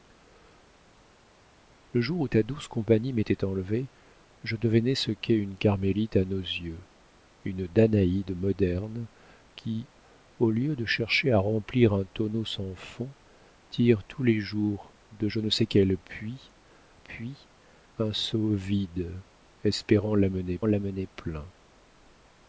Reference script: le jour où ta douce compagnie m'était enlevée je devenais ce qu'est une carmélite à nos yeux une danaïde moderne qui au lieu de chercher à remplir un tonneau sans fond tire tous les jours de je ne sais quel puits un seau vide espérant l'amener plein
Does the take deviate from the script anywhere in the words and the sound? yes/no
yes